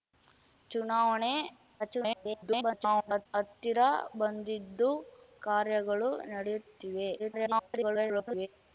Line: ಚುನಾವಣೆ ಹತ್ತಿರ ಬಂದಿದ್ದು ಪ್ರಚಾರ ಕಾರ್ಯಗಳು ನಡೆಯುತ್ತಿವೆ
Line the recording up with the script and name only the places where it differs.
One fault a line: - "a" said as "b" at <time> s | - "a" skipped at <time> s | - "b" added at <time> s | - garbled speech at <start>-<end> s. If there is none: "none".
- garbled speech at 1.8-3.3 s
- "ಪ್ರಚಾರ" skipped at 4.9 s
- garbled speech at 7.2-8.5 s